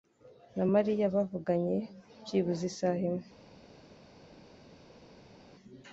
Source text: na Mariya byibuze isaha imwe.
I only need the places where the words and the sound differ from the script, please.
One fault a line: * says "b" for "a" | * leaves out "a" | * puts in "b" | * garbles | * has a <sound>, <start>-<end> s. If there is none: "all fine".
* puts in "bavuganye"